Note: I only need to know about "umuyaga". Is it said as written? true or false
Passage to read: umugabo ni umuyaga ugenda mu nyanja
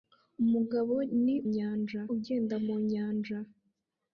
false